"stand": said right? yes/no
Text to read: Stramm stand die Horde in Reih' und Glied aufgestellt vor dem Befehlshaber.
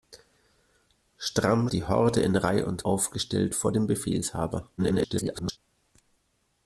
no